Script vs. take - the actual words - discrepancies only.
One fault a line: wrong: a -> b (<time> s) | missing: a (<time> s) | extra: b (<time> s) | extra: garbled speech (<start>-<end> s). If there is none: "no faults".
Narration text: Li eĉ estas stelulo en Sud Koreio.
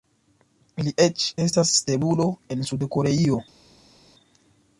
no faults